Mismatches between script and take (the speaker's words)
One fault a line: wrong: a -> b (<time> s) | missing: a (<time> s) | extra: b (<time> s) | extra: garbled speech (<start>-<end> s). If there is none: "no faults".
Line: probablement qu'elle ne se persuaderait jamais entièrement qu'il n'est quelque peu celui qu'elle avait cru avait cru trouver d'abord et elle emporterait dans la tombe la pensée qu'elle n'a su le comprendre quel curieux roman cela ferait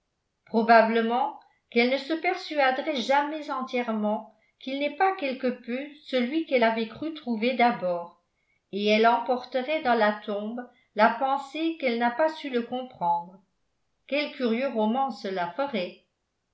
extra: pas (5.0 s)
missing: avait cru (7.1 s)
extra: pas (12.1 s)